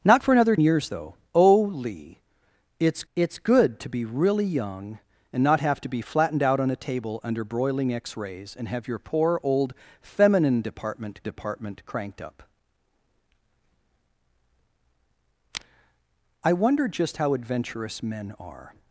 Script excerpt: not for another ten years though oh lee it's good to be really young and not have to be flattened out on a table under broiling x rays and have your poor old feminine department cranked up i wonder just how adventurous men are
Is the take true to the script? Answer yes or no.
no